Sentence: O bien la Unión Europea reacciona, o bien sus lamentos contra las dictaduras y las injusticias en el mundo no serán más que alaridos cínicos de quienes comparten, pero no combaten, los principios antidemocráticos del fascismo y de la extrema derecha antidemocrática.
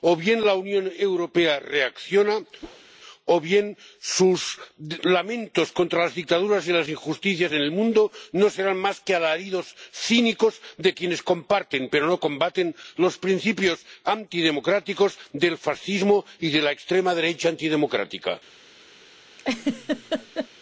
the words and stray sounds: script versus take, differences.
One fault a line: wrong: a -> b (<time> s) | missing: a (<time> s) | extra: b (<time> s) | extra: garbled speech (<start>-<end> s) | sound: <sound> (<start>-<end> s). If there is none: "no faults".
sound: whoosh (2.6-2.9 s)
sound: laugh (19.4-20.5 s)